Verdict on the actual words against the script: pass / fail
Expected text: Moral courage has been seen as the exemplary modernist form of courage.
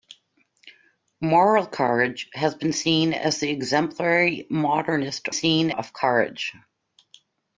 fail